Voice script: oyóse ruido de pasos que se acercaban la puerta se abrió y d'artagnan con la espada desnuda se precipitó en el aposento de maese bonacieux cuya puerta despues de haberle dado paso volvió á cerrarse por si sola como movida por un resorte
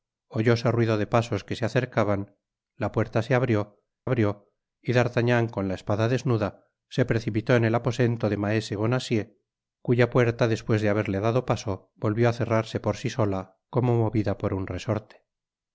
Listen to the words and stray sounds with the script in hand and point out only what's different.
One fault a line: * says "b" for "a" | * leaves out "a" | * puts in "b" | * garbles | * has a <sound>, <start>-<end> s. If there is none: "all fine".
* puts in "abrió"